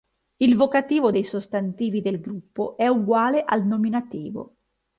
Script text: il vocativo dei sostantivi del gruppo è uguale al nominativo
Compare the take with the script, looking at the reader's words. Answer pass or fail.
pass